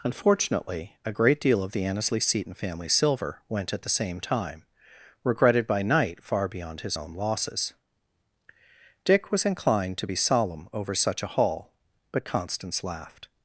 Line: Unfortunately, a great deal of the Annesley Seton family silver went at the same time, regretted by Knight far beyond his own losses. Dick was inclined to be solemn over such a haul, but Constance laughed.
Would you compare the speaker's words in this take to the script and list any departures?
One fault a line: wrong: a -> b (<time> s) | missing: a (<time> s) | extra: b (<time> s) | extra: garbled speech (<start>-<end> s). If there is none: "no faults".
no faults